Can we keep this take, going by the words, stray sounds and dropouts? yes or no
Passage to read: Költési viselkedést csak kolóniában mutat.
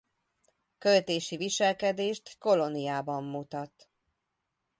no